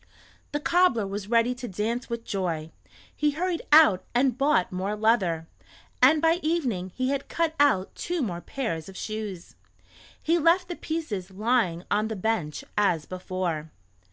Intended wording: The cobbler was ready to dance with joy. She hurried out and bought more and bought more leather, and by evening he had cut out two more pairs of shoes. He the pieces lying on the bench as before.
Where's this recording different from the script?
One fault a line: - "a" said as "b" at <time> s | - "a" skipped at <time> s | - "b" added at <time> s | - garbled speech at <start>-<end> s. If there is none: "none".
- "She" said as "He" at 3.1 s
- "and bought more" skipped at 5.0 s
- "left" added at 10.4 s